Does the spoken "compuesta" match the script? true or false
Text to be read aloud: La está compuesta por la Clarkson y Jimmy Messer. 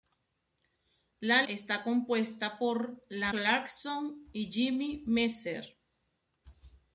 true